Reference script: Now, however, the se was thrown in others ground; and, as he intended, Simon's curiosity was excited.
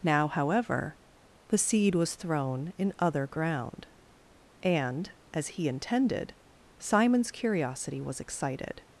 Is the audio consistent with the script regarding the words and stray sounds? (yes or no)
no